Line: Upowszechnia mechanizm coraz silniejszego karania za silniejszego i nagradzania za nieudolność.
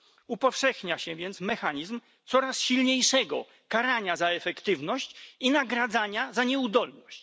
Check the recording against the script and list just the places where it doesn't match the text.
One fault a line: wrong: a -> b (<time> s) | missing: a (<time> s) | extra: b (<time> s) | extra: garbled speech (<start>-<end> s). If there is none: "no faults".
extra: się więc (1.0 s)
wrong: silniejszego -> efektywność (4.3 s)